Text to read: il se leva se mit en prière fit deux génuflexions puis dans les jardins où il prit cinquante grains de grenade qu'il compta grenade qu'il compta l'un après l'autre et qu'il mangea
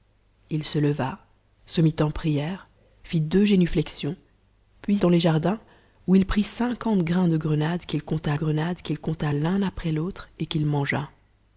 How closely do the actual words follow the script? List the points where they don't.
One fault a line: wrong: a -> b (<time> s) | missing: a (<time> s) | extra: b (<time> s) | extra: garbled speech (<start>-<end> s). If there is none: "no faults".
no faults